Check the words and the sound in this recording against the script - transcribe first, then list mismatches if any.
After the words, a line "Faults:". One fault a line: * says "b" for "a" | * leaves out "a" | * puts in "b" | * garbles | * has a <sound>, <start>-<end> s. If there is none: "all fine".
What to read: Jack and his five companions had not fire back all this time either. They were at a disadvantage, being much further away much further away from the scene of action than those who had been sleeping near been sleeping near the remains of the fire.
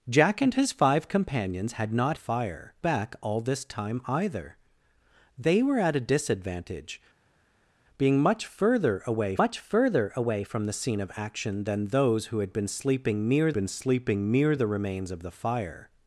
Jack and his five companions had not fire back all this time either. They were at a disadvantage, being much further away much further away from the scene of action than those who had been sleeping near been sleeping near the remains of the fire.
Faults:
all fine